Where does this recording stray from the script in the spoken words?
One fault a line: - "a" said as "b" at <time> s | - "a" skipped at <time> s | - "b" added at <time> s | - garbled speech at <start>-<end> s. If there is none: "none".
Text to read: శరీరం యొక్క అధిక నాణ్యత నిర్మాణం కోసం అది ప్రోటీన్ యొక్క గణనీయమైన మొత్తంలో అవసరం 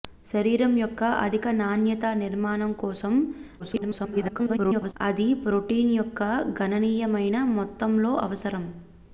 - garbled speech at 3.6-4.9 s